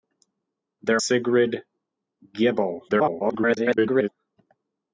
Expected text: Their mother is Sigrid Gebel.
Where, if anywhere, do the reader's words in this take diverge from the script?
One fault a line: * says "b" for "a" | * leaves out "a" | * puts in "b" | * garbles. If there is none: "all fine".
* leaves out "mother is"
* garbles